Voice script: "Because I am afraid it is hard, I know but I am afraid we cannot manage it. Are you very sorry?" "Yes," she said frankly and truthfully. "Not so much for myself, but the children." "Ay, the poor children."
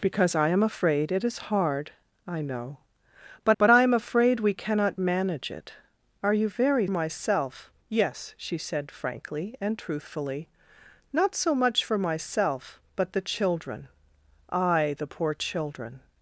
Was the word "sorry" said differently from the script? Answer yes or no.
yes